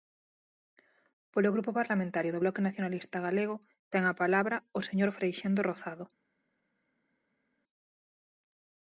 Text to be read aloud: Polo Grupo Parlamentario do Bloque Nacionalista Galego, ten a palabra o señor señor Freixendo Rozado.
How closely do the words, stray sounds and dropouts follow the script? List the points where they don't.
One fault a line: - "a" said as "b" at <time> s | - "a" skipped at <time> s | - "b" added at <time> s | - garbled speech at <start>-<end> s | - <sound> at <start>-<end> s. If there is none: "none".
- "señor" skipped at 5.1 s